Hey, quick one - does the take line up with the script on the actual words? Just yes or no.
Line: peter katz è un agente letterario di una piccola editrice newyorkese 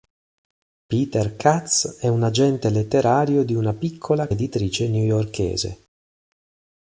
yes